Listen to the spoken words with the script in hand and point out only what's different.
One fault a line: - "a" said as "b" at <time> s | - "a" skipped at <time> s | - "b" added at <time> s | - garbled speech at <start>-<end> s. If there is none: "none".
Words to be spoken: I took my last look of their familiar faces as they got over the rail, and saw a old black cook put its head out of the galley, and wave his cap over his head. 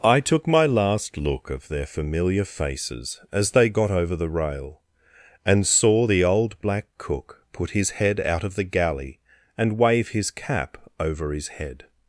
- "a" said as "the" at 6.1 s
- "its" said as "his" at 7.7 s